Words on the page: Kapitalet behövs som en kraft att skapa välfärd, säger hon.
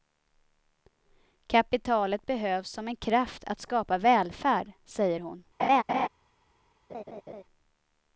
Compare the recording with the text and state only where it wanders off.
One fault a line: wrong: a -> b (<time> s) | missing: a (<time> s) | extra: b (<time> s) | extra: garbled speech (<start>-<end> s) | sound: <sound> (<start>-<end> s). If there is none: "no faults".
sound: laugh (5.6-6.1 s)
sound: laugh (6.9-7.4 s)